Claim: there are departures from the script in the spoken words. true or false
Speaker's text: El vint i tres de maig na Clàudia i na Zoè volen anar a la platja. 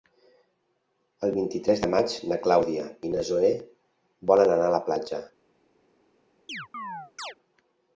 false